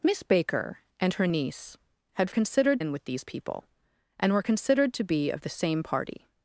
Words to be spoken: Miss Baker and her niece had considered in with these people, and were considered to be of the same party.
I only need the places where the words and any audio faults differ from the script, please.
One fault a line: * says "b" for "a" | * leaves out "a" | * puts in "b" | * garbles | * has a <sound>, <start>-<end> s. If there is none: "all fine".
all fine